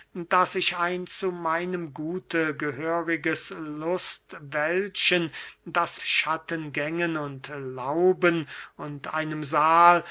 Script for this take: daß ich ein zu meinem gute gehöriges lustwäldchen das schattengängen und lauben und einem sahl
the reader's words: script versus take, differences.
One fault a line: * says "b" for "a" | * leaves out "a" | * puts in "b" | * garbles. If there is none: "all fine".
all fine